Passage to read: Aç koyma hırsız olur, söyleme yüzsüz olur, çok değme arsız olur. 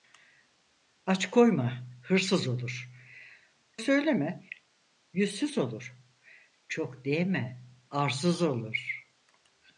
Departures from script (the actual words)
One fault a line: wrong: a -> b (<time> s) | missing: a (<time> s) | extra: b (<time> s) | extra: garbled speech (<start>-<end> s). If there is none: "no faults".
no faults